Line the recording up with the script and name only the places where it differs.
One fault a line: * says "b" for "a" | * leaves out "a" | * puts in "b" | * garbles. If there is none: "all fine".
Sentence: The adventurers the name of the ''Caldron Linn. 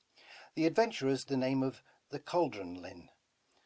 all fine